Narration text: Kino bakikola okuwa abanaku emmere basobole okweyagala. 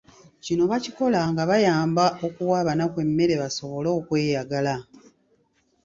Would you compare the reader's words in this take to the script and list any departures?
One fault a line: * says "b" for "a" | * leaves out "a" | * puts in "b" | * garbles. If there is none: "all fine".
* puts in "nga bayamba"